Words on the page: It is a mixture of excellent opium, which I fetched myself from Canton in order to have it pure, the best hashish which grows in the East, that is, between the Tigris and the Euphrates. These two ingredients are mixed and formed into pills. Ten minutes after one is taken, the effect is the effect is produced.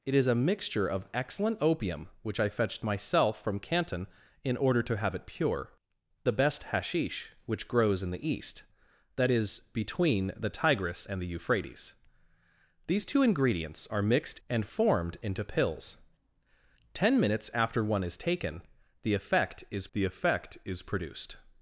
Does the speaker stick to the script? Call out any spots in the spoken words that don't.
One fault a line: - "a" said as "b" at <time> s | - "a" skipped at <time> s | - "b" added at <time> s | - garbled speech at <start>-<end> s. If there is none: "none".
none